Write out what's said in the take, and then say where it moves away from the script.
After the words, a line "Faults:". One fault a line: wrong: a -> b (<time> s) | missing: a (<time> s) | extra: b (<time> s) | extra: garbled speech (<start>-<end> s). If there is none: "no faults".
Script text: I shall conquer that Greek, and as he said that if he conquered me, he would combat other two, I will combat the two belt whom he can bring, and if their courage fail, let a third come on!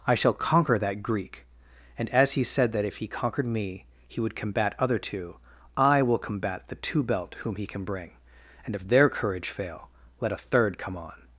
I shall conquer that Greek, and as he said that if he conquered me, he would combat other two, I will combat the two belt whom he can bring, and if their courage fail, let a third come on!
Faults:
no faults